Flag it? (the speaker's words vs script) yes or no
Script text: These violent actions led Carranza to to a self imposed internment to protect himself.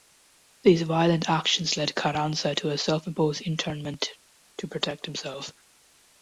yes